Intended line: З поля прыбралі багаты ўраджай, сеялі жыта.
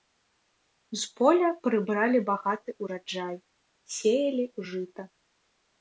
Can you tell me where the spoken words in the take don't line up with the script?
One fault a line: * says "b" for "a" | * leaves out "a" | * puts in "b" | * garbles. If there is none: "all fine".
all fine